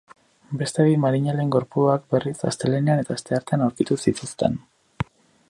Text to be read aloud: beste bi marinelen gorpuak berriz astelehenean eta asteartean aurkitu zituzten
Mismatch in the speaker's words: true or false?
false